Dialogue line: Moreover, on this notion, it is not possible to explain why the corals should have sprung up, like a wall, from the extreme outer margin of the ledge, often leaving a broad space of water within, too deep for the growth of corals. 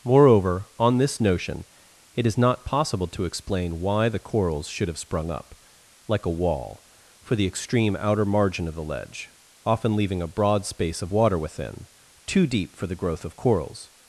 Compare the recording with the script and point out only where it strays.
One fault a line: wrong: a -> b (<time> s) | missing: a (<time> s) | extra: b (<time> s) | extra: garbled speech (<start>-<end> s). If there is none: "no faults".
wrong: from -> for (7.2 s)